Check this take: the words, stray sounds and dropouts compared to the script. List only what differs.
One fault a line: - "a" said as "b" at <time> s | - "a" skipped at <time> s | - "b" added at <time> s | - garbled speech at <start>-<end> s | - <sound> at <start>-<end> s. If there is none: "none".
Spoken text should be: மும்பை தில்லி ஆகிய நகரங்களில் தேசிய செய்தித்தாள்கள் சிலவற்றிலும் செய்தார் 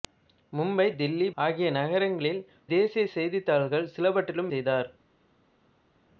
none